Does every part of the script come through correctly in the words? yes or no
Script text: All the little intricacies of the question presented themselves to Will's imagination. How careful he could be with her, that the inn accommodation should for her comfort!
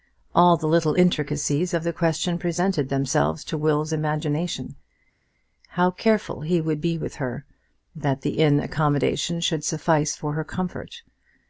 no